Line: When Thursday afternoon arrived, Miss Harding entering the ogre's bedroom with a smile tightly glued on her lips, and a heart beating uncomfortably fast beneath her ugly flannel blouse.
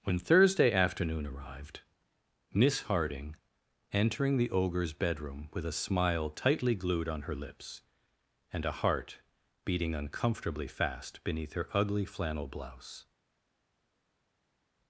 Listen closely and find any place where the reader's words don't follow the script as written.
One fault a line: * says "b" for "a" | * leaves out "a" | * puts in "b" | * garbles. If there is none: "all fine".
all fine